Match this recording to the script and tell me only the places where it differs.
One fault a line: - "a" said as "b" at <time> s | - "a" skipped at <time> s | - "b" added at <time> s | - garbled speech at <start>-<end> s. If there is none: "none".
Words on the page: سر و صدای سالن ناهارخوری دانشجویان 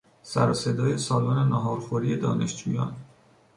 none